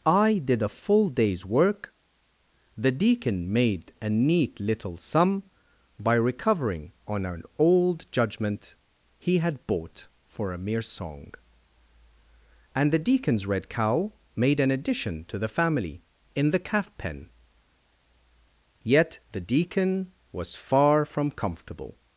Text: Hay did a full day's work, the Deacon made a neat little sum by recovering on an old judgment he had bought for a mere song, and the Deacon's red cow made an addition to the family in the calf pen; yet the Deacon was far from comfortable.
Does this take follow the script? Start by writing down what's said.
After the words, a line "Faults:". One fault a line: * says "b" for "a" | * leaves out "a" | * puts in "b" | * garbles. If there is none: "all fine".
I did a full day's work, the Deacon made a neat little sum by recovering on an old judgment he had bought for a mere song, and the Deacon's red cow made an addition to the family in the calf pen; yet the Deacon was far from comfortable.
Faults:
* says "I" for "Hay"